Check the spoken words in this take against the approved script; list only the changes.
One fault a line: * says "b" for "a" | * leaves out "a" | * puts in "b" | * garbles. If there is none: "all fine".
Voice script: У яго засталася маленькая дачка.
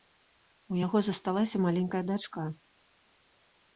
all fine